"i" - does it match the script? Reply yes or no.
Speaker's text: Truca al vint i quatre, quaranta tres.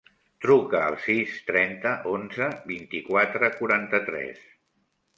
yes